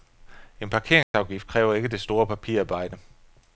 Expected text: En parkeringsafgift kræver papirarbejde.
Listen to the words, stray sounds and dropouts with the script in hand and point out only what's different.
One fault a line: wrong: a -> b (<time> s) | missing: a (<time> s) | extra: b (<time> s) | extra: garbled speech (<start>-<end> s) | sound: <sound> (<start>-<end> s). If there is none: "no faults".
sound: dropout (1.0-1.1 s)
extra: ikke det store (1.7 s)